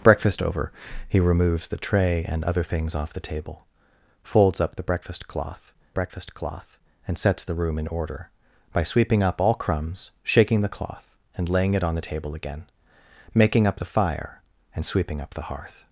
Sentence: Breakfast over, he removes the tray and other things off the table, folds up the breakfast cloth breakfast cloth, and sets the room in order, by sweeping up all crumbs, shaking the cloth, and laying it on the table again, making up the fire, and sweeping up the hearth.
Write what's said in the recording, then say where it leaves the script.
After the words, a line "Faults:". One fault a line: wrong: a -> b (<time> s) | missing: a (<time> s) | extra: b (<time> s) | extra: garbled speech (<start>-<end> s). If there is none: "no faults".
Breakfast over, he removes the tray and other things off the table, folds up the breakfast cloth breakfast cloth, and sets the room in order, by sweeping up all crumbs, shaking the cloth, and laying it on the table again, making up the fire, and sweeping up the hearth.
Faults:
no faults